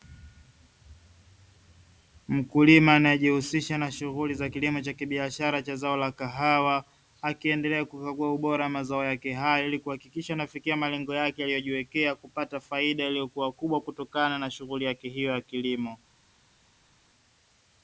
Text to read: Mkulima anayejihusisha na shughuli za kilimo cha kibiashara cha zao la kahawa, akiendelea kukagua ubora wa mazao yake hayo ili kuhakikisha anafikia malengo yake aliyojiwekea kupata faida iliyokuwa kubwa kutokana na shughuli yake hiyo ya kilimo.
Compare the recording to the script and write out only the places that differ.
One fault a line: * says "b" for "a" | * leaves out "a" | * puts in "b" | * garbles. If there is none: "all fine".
all fine